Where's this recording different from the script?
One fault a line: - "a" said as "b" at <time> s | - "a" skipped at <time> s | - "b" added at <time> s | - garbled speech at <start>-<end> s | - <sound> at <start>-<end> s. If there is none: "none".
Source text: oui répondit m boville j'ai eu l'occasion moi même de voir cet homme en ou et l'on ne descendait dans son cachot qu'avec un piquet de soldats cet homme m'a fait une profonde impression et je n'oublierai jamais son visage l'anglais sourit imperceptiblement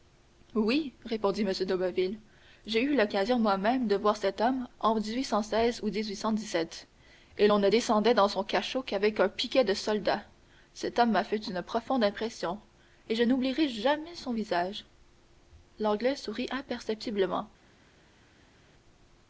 - "de" added at 1.5 s